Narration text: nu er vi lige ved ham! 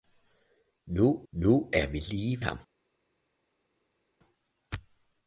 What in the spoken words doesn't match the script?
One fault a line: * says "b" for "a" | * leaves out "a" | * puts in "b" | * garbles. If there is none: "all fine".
* puts in "nu"
* leaves out "ved"